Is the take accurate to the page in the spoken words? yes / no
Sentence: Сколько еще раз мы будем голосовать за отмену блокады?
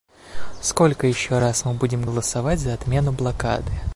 yes